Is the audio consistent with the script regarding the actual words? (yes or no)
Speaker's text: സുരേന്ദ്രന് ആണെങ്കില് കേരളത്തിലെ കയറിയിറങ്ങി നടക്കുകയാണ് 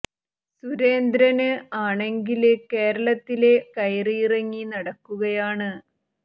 yes